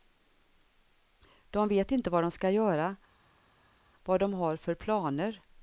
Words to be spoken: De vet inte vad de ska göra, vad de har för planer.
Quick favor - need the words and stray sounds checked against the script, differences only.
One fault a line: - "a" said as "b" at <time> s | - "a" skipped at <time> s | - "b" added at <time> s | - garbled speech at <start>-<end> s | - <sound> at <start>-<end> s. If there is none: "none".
none